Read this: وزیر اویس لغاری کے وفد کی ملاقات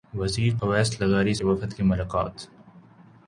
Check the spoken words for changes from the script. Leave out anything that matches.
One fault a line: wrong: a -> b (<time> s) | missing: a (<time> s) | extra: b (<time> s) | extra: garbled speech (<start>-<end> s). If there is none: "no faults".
no faults